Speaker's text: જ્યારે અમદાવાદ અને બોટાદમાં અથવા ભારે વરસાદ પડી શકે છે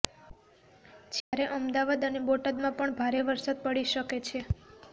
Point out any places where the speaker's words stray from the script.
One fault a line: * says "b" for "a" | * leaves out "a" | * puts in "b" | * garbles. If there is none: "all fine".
* says "પણ" for "અથવા"